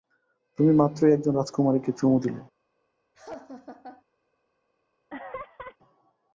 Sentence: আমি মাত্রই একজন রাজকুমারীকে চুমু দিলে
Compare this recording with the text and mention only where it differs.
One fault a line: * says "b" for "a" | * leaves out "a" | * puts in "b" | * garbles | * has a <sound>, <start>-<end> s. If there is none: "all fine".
* says "তুমি" for "আমি"
* has a laugh, 3.1-4.0 s
* has a laugh, 5.1-5.8 s